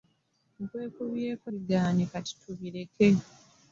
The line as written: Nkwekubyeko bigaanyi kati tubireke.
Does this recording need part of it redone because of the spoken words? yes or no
no